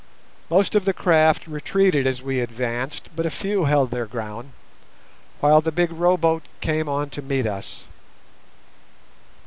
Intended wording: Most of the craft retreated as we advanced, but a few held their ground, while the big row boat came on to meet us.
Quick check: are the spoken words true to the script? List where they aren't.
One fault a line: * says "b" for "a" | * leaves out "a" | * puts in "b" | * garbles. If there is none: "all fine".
all fine